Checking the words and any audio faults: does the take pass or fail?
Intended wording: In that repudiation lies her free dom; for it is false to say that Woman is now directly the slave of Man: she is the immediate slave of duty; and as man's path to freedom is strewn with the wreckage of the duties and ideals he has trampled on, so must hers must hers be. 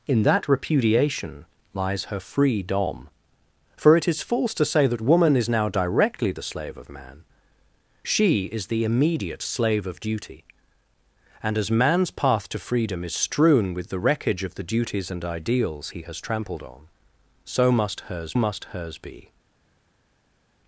pass